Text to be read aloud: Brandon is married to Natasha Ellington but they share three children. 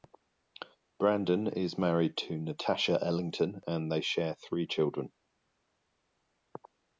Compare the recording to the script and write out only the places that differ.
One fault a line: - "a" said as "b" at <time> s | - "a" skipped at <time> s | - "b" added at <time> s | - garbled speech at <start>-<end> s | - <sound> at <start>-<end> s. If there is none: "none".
- "but" said as "and" at 3.7 s